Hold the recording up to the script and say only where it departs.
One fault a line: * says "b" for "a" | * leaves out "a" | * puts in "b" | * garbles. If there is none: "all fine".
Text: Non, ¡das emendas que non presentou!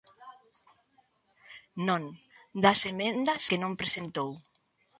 all fine